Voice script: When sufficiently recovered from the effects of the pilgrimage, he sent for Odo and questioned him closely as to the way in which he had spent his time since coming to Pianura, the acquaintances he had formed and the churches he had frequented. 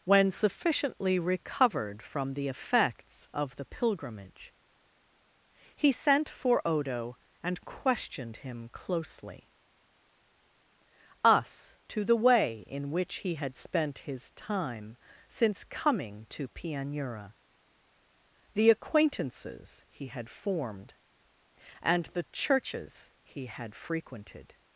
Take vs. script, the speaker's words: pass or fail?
fail